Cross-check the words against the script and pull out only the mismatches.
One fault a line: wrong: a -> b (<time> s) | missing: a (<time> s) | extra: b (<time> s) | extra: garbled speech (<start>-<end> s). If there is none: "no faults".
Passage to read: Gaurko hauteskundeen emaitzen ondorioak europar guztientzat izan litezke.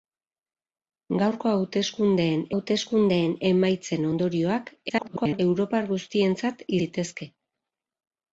extra: hauteskundeen (2.5 s)
extra: garbled speech (4.9-5.4 s)
missing: izan (6.7 s)